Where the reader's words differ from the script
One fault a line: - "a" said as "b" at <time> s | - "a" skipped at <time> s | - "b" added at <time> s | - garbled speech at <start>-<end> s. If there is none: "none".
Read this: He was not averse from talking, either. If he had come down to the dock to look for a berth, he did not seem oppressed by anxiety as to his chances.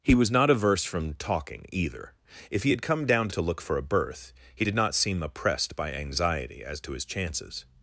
- "the dock" skipped at 3.4 s